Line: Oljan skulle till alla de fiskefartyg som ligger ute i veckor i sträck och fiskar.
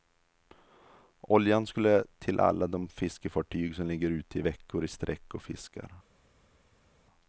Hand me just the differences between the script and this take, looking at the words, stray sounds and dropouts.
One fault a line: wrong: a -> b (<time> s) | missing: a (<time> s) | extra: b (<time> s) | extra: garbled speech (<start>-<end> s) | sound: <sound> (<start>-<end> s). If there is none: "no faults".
no faults